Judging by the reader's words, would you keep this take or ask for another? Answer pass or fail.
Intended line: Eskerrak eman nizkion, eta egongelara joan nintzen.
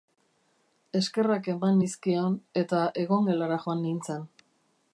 pass